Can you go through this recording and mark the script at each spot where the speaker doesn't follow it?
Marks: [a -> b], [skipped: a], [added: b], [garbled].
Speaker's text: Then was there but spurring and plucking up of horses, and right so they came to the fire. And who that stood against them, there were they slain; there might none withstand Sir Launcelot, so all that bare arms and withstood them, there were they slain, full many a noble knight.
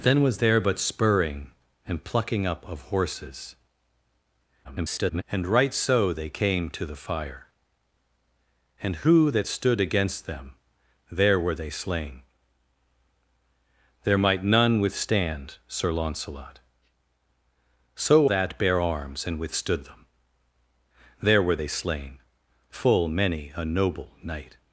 Then was there but spurring and plucking up of horses, [garbled] and right so they came to the fire. And who that stood against them, there were they slain; there might none withstand Sir Launcelot, so [skipped: all] that bare arms and withstood them, there were they slain, full many a noble knight.